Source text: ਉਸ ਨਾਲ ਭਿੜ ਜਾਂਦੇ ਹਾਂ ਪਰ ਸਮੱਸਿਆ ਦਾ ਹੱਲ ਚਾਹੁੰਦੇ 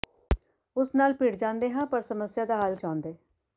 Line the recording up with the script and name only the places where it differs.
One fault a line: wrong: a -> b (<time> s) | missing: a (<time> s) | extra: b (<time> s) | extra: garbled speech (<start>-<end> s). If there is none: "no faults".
no faults